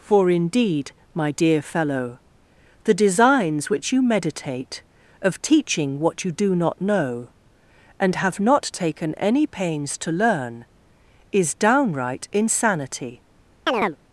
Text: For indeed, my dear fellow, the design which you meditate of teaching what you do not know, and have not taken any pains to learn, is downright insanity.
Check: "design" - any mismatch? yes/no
yes